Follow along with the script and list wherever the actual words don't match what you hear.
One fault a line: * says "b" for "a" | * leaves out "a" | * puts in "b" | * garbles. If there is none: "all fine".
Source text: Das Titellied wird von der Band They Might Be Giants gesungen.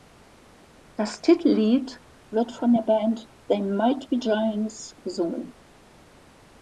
all fine